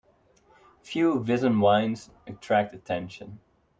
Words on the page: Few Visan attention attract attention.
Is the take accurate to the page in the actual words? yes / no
no